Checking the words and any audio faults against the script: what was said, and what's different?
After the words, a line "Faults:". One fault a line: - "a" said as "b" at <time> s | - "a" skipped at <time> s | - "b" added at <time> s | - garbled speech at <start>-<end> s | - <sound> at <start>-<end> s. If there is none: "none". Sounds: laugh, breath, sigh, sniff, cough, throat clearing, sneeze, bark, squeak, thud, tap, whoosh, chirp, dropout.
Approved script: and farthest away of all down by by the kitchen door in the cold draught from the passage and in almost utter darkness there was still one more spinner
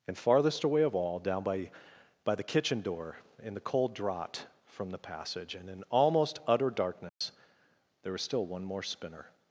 and farthest away of all down by by the kitchen door in the cold draught from the passage and in almost utter darkness there was still one more spinner
Faults:
- dropout at 7.1-7.2 s